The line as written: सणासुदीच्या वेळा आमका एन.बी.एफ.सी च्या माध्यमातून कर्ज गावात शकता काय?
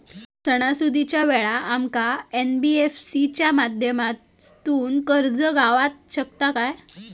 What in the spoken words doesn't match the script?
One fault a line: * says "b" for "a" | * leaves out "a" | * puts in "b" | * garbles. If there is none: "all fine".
all fine